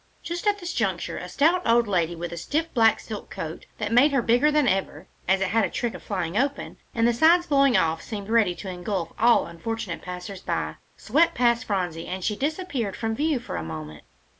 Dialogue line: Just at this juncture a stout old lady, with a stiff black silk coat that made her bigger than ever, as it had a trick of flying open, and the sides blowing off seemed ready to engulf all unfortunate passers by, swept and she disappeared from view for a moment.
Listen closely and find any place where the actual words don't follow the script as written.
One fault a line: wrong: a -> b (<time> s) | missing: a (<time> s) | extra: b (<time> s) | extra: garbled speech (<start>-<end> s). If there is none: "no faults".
extra: past Phronsie (11.3 s)